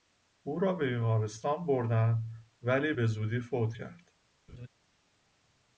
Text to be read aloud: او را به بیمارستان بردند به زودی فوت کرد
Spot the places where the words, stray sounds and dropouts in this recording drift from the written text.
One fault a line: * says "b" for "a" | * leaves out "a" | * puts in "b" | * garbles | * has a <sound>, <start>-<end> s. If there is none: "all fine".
* puts in "ولی"
* has a laugh, 4.5-4.7 s